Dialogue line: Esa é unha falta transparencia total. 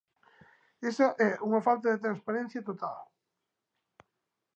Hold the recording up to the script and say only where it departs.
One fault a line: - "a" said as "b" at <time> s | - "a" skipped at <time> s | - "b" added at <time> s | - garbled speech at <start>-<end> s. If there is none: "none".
- "de" added at 1.9 s